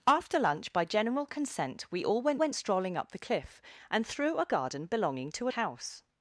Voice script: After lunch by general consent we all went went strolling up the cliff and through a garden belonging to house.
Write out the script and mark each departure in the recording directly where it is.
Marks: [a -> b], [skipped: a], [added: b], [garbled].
After lunch by general consent we all went went strolling up the cliff and through a garden belonging to house.